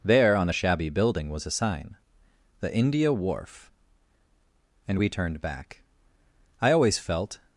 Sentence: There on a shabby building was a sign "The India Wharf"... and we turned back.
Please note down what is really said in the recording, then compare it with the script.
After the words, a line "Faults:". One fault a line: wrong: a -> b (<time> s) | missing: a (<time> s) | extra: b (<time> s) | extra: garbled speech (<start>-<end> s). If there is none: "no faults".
There on a shabby building was a sign "The India Wharf"... and we turned back. I always felt
Faults:
extra: I always felt (6.6 s)